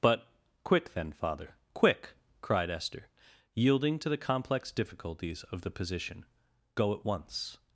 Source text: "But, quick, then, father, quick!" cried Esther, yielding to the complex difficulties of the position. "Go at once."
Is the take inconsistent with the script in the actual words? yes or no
no